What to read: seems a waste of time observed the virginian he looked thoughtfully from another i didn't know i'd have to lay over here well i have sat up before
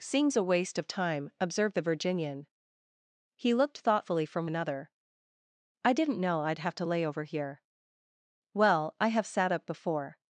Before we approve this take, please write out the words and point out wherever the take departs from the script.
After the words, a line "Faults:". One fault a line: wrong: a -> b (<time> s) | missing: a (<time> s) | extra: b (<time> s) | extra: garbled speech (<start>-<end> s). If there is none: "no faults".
seems a waste of time observed the virginian he looked thoughtfully from another i didn't know i'd have to lay over here well i have sat up before
Faults:
no faults